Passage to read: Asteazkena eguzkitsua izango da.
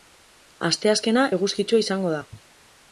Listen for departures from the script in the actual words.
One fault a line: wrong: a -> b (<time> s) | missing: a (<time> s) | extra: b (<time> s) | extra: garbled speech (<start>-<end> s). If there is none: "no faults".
no faults